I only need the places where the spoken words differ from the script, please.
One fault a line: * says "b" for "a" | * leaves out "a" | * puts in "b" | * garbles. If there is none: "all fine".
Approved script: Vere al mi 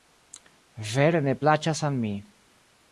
* puts in "ne plaĉas"